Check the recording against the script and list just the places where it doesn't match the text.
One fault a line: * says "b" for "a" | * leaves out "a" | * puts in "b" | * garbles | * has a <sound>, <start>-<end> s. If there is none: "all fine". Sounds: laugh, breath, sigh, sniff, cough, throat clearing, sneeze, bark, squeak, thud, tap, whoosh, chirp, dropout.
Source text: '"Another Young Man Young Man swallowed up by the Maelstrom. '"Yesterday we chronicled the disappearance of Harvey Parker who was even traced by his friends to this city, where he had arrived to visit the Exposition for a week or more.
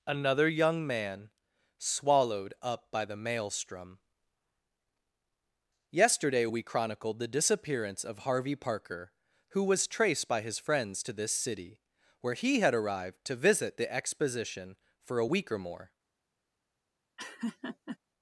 * leaves out "Young Man"
* leaves out "even"
* has a laugh, 17.2-18.0 s